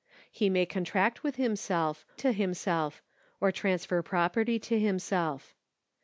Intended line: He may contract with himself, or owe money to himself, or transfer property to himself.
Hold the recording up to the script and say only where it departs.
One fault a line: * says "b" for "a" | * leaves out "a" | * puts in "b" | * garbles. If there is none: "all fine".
* leaves out "or owe money"